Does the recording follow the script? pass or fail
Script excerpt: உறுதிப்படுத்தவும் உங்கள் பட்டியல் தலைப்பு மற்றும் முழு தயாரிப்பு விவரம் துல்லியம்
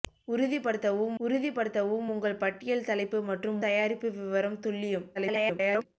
fail